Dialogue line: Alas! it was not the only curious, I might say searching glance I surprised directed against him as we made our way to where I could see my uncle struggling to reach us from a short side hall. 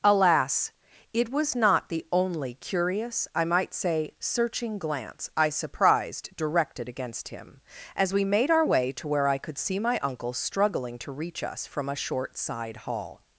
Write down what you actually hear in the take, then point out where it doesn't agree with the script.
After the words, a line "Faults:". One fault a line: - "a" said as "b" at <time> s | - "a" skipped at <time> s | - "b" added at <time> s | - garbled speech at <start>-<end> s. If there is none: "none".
Alas! it was not the only curious, I might say searching glance I surprised directed against him as we made our way to where I could see my uncle struggling to reach us from a short side hall.
Faults:
none